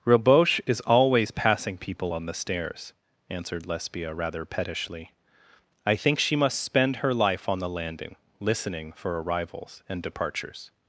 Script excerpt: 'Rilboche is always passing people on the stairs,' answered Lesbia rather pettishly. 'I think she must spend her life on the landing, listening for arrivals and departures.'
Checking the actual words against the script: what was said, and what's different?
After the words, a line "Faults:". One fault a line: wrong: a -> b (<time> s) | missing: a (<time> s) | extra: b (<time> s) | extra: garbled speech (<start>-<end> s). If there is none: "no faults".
'Rilboche is always passing people on the stairs,' answered Lesbia rather pettishly. 'I think she must spend her life on the landing, listening for arrivals and departures.'
Faults:
no faults